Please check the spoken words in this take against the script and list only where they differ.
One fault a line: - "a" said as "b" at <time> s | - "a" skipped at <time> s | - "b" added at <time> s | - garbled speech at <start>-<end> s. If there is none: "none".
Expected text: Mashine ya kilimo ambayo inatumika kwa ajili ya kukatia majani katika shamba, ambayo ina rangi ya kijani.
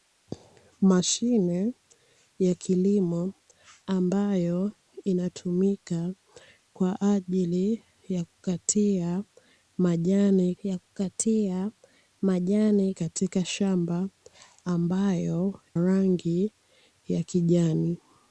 - "ya kukatia majani" added at 10.6 s
- "ina" skipped at 15.6 s